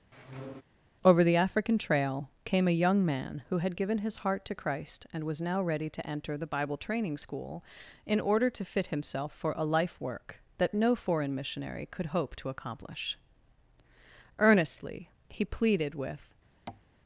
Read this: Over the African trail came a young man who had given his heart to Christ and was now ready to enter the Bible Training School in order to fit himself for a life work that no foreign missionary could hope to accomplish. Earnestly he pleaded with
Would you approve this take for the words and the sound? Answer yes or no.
no